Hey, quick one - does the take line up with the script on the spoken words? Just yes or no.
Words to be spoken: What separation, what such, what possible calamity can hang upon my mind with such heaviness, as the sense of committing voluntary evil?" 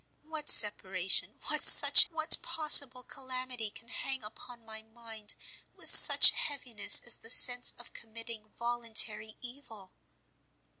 yes